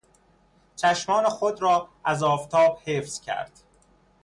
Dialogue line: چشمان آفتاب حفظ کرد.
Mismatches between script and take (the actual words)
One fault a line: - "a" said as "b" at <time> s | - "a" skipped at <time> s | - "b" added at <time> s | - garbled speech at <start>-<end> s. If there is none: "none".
- "خود را از" added at 1.3 s